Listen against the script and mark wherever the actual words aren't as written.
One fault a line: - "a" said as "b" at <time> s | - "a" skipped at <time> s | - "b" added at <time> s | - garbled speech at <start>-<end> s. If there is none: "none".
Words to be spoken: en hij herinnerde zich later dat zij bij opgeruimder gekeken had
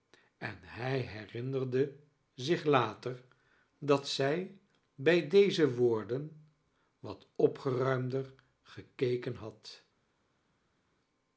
- "deze woorden wat" added at 5.3 s